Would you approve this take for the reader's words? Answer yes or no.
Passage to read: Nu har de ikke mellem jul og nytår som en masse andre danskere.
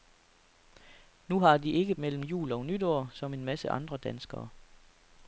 yes